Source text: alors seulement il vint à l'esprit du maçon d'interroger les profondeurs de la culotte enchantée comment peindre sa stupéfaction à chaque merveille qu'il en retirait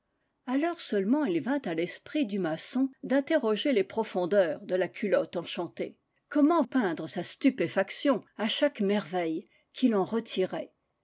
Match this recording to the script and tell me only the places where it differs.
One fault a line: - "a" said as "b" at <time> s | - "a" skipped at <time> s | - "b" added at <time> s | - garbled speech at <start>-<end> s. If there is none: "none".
none